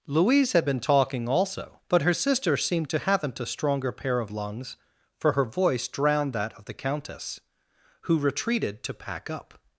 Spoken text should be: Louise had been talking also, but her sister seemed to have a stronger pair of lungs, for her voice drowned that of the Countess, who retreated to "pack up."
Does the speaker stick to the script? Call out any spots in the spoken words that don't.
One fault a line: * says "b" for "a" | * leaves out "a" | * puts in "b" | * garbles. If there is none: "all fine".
* says "haven't" for "have"